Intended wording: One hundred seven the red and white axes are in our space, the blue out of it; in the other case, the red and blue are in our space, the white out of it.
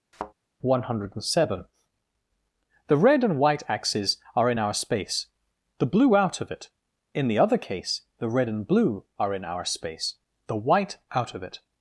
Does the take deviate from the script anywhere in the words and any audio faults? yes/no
yes